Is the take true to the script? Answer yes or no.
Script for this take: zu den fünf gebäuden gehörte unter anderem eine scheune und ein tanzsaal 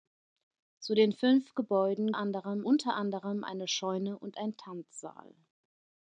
no